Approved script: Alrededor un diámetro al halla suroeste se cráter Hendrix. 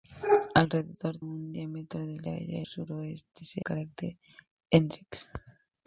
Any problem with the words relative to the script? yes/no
no